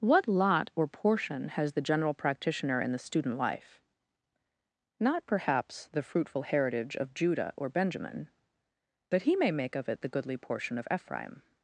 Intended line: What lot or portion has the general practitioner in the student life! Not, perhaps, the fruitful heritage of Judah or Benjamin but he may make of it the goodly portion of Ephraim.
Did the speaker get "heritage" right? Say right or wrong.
right